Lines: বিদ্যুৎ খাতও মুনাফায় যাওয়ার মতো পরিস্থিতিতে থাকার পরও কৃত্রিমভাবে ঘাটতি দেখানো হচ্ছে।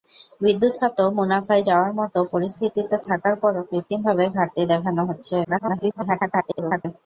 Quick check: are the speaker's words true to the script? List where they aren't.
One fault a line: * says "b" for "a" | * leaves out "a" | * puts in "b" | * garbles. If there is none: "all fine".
* garbles